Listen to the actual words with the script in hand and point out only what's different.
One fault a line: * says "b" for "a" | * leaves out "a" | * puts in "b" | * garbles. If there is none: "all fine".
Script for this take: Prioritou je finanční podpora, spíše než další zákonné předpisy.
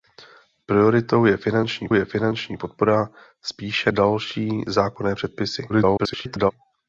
* puts in "je finanční"
* leaves out "než"
* garbles